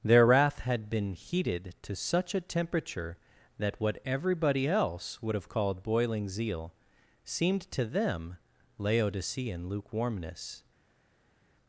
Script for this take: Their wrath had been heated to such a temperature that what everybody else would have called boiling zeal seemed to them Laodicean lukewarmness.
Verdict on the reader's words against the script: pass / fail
pass